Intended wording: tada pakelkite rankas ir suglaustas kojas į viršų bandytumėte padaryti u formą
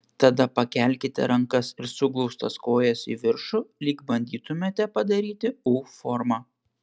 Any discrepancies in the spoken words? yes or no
yes